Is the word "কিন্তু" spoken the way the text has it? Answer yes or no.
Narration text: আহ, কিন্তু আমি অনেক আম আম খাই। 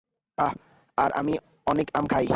no